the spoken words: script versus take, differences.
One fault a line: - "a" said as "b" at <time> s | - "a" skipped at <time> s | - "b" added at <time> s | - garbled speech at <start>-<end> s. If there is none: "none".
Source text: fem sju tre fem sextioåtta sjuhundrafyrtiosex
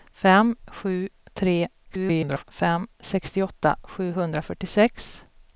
- garbled speech at 1.8-2.4 s